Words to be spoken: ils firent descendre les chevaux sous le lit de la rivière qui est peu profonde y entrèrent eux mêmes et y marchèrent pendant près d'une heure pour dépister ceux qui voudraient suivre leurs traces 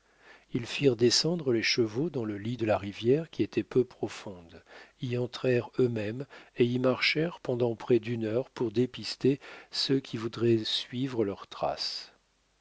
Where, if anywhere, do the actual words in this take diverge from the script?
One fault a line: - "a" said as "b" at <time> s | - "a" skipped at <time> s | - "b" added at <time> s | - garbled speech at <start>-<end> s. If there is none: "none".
- "sous" said as "dans" at 2.1 s
- "est" said as "était" at 3.4 s